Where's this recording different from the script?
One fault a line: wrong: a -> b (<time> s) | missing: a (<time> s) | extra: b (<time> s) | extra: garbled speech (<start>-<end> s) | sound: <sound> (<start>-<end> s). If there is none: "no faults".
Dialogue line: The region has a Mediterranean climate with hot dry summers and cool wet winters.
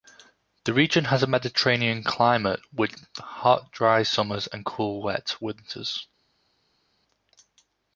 no faults